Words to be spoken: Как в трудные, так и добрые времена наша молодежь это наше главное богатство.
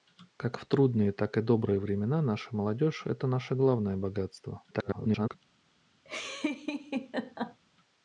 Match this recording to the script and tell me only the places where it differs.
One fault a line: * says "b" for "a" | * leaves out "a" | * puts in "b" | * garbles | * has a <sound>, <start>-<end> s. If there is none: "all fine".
* garbles
* has a laugh, 6.0-7.6 s